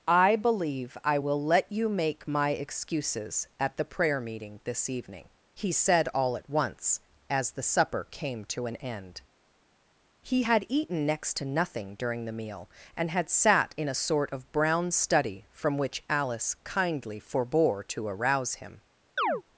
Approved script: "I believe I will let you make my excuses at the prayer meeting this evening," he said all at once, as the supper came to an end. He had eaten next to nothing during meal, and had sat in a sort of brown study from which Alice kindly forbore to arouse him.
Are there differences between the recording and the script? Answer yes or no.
yes